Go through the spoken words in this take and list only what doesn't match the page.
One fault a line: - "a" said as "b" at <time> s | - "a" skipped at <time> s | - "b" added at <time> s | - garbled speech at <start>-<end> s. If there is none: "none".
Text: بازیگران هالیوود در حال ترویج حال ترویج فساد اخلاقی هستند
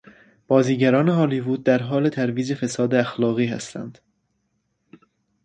- "حال ترویج" skipped at 2.5 s